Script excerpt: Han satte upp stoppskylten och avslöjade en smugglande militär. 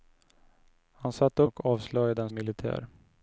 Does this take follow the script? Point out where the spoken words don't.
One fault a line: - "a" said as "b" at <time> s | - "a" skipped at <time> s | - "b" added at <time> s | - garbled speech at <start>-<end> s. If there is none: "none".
- "upp stoppskylten" skipped at 1.4 s
- "smugglande" skipped at 2.3 s